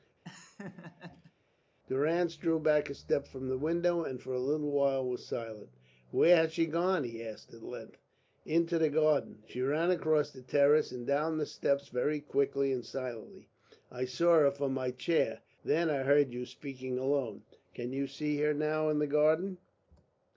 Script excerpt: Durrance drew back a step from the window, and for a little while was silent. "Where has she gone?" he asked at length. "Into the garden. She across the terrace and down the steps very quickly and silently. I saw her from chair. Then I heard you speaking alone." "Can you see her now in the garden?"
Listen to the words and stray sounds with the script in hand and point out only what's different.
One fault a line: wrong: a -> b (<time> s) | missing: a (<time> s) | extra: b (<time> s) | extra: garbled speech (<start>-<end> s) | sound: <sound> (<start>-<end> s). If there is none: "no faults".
sound: laugh (0.2-1.3 s)
extra: ran (9.6 s)
extra: my (14.7 s)